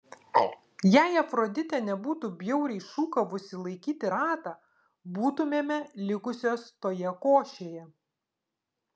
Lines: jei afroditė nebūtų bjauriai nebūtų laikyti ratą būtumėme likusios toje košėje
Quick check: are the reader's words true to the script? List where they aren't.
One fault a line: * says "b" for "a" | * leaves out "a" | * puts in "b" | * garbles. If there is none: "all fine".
* says "šūkavusi" for "nebūtų"